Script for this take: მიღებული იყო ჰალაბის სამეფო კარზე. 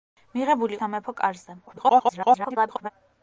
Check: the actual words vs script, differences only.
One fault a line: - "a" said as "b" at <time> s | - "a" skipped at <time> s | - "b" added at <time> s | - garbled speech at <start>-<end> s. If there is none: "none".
- "იყო ჰალაბის" skipped at 0.8 s
- garbled speech at 1.7-2.9 s